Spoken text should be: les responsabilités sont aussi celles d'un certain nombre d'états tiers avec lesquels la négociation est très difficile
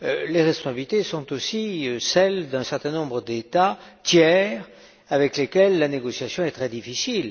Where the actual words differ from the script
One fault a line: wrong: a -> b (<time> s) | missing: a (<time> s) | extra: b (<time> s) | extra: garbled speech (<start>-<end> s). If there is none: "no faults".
no faults